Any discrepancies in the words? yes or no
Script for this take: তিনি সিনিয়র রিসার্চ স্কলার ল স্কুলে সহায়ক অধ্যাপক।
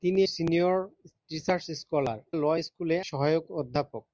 no